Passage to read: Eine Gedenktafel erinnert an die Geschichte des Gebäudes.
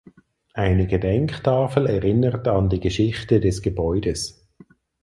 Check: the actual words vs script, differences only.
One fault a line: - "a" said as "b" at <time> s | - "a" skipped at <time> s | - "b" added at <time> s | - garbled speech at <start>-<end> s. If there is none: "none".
none